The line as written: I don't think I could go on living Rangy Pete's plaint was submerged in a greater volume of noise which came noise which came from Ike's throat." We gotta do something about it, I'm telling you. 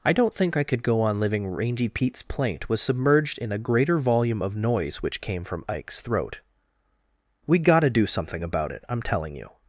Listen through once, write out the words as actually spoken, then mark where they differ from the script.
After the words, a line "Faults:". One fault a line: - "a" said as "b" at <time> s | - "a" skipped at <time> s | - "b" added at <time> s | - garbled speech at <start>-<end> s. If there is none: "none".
I don't think I could go on living Rangy Pete's plaint was submerged in a greater volume of noise which came from Ike's throat." We gotta do something about it, I'm telling you.
Faults:
- "noise which came" skipped at 5.4 s